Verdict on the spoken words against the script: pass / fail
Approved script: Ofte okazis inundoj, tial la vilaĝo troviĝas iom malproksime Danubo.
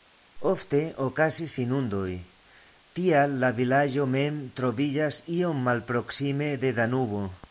fail